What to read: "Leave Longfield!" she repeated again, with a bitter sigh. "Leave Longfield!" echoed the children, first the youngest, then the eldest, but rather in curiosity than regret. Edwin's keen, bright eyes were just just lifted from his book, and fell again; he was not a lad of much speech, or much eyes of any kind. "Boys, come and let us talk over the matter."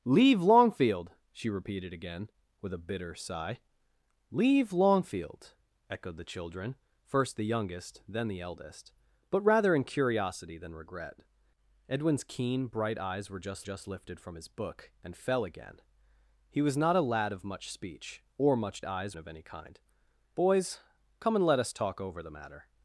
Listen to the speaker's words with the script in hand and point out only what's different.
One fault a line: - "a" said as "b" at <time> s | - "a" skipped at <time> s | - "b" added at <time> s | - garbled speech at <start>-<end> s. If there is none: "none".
none